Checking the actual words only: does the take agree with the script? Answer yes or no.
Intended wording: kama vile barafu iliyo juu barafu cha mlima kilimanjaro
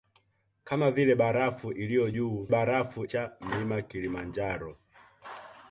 yes